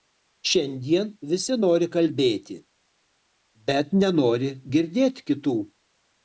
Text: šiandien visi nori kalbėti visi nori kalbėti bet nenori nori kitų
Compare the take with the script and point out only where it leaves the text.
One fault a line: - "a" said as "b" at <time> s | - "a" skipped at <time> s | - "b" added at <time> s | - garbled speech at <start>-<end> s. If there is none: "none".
- "visi nori kalbėti" skipped at 2.6 s
- "nori" said as "girdėt" at 4.8 s